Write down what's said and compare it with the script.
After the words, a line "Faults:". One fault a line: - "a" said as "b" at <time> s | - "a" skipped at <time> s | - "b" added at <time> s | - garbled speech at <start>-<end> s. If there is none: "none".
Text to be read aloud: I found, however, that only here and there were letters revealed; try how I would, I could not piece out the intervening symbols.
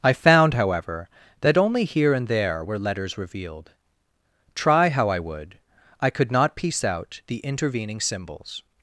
I found, however, that only here and there were letters revealed; try how I would, I could not piece out the intervening symbols.
Faults:
none